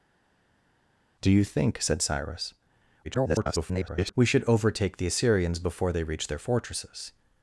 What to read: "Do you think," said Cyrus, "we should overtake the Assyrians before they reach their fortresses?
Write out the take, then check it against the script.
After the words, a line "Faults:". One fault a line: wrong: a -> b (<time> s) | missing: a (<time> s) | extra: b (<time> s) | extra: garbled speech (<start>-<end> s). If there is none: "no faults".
"Do you think," said Cyrus, [garbled] "we should overtake the Assyrians before they reach their fortresses?
Faults:
extra: garbled speech (3.0-4.1 s)